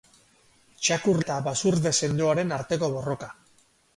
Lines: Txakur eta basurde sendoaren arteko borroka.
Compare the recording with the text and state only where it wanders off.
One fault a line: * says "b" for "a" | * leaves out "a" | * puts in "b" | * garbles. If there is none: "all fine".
all fine